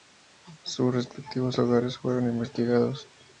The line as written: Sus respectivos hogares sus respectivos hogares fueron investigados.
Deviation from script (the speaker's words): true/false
true